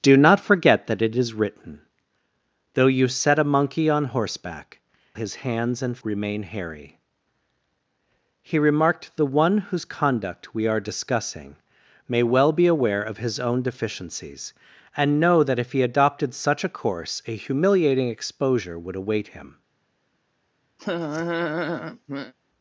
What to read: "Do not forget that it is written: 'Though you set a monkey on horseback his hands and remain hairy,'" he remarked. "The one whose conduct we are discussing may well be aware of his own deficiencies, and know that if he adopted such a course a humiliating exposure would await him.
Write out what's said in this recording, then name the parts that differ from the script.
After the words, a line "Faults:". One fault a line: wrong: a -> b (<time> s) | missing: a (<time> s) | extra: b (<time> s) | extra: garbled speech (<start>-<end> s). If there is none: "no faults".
"Do not forget that it is written: 'Though you set a monkey on horseback his hands and remain hairy,'" he remarked. "The one whose conduct we are discussing may well be aware of his own deficiencies, and know that if he adopted such a course a humiliating exposure would await him.
Faults:
no faults